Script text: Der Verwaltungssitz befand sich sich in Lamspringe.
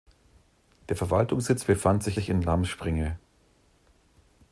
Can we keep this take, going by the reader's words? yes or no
yes